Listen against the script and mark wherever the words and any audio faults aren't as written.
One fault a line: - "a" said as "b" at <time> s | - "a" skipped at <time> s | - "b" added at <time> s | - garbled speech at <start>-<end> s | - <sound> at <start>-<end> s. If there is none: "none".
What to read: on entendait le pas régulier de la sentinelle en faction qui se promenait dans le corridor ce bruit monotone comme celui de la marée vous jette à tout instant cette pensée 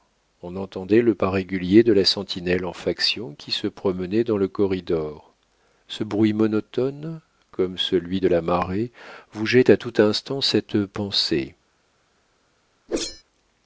- whoosh at 12.9-13.2 s